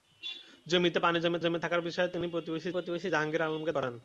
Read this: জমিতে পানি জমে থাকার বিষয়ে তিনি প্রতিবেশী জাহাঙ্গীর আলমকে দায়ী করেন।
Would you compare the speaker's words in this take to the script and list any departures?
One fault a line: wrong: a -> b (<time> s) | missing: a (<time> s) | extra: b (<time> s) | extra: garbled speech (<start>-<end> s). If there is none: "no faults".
extra: জমে (1.4 s)
extra: প্রতিবেশী (2.7 s)
missing: দায়ী (3.7 s)